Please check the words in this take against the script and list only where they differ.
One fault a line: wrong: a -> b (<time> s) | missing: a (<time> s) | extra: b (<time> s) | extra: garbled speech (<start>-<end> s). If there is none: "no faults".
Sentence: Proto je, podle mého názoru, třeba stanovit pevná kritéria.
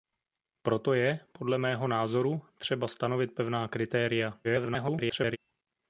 extra: garbled speech (4.4-5.4 s)